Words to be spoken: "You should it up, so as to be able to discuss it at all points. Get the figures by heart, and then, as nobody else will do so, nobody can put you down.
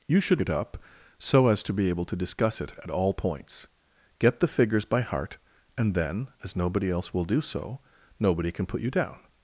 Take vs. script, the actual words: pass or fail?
pass